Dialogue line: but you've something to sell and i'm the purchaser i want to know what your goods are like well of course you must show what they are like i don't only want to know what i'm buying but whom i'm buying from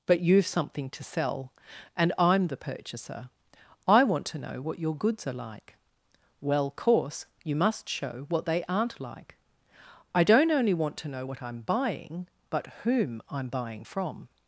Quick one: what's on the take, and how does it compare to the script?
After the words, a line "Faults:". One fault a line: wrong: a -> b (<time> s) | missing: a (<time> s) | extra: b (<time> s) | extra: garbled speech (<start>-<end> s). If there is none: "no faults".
but you've something to sell and i'm the purchaser i want to know what your goods are like well course you must show what they aren't like i don't only want to know what i'm buying but whom i'm buying from
Faults:
missing: of (6.7 s)
wrong: are -> aren't (8.7 s)